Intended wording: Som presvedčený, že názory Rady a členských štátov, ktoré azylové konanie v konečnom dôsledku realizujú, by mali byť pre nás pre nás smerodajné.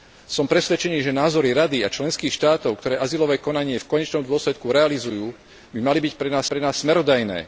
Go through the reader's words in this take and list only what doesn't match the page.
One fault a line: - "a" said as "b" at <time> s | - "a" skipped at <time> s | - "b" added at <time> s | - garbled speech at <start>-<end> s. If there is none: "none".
none